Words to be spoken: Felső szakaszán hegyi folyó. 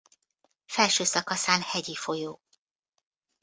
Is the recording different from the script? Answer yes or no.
no